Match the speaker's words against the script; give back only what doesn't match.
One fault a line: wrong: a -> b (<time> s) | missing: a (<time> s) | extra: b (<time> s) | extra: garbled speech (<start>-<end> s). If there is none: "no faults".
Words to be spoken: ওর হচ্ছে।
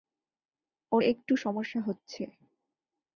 extra: একটু সমস্যা (1.0 s)